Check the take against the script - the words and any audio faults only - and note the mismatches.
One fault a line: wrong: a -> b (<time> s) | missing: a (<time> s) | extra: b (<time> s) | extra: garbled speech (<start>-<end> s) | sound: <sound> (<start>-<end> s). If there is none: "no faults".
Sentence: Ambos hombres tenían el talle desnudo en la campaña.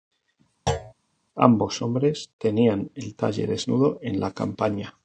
sound: thud (0.7-0.9 s)